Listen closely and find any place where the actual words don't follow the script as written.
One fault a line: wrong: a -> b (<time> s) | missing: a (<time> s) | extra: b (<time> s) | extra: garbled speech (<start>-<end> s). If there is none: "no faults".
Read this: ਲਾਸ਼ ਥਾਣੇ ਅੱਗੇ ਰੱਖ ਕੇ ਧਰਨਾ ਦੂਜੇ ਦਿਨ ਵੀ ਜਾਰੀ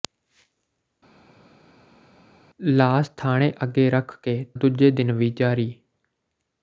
missing: ਧਰਨਾ (4.4 s)